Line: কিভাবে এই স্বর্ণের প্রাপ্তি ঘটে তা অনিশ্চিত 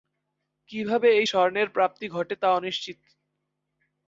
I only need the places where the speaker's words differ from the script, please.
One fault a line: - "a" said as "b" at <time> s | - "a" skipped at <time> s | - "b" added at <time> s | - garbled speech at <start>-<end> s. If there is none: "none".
none